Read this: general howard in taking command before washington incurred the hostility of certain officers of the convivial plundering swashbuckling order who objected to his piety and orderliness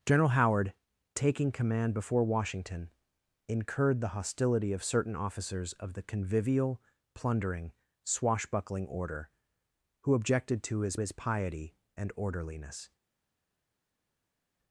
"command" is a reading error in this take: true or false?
false